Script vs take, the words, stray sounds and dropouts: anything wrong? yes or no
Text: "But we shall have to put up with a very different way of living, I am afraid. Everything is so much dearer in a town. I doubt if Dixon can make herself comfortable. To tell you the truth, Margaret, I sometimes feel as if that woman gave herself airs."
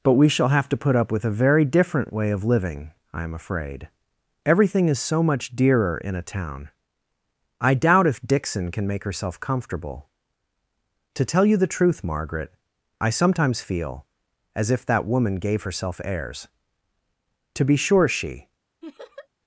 yes